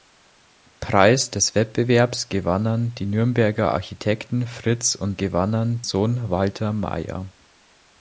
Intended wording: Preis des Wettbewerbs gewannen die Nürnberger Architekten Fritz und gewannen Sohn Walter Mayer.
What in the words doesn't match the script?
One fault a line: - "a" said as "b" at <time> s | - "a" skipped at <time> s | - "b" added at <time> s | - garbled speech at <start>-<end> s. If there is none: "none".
none